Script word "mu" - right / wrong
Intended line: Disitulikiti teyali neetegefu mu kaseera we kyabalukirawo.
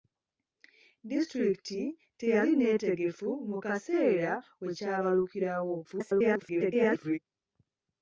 right